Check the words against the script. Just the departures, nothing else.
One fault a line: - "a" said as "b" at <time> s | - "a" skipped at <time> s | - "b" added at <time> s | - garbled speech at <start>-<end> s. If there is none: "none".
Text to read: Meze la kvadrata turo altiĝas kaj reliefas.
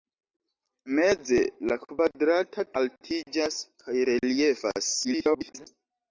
- "turo" skipped at 2.7 s
- garbled speech at 5.0-5.7 s